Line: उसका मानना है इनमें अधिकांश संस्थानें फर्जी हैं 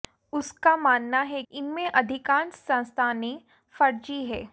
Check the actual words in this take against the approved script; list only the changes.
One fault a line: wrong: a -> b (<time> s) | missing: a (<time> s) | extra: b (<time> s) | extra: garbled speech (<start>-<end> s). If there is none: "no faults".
no faults